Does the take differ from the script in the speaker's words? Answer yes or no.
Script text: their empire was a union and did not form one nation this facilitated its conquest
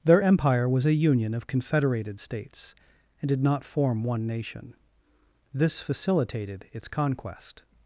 yes